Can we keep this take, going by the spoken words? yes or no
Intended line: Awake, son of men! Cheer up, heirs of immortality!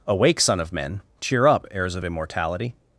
yes